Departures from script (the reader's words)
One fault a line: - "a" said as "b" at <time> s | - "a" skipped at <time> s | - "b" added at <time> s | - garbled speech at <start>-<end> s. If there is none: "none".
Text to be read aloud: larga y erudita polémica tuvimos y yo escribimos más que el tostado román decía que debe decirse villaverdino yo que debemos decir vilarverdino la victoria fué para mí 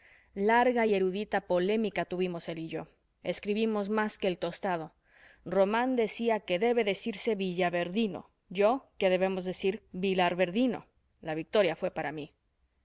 - "él" added at 2.5 s